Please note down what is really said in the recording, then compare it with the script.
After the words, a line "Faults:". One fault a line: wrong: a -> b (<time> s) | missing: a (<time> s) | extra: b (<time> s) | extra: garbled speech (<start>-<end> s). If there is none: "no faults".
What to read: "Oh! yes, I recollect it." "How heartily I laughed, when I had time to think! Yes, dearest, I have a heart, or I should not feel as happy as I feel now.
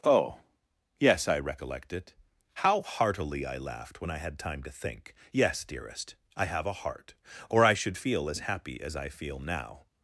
"Oh! yes, I recollect it." "How heartily I laughed, when I had time to think! Yes, dearest, I have a heart, or I should feel as happy as I feel now.
Faults:
missing: not (8.0 s)